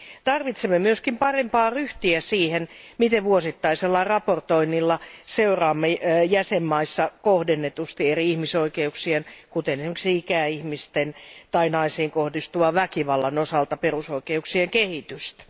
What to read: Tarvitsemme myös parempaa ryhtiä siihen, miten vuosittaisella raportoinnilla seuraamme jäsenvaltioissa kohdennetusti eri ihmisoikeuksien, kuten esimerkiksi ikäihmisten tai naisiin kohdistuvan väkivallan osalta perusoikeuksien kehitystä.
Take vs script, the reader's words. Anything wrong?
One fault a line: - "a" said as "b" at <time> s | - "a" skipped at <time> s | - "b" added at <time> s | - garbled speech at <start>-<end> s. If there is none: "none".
none